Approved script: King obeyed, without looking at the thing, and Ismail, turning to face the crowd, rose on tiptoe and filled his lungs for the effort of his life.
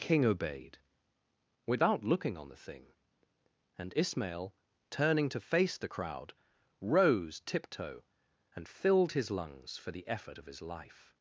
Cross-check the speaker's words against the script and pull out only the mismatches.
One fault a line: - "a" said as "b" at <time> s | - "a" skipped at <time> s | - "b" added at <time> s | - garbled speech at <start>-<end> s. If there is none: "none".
- "at" said as "on" at 2.4 s
- "on" skipped at 7.4 s